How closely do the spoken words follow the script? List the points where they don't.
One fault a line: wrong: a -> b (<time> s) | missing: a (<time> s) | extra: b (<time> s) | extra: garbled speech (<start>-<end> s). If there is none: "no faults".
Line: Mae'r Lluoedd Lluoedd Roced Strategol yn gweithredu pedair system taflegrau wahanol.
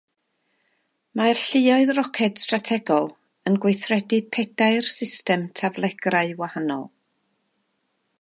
missing: Lluoedd (1.9 s)